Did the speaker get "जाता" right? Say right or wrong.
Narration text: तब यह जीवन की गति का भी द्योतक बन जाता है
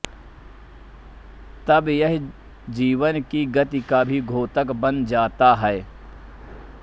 right